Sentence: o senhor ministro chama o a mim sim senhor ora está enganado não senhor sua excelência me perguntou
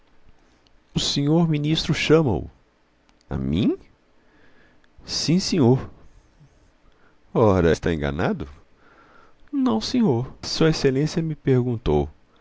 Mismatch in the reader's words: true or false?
false